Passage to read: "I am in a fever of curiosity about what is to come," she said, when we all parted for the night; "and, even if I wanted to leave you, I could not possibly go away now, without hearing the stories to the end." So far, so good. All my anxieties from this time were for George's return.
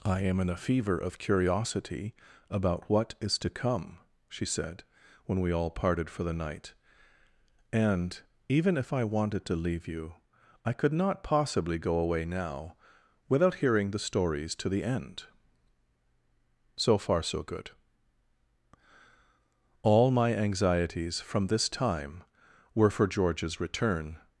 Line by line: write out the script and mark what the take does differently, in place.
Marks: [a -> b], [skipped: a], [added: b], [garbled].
"I am in a fever of curiosity about what is to come," she said, when we all parted for the night; "and, even if I wanted to leave you, I could not possibly go away now, without hearing the stories to the end." So far, so good. All my anxieties from this time were for George's return.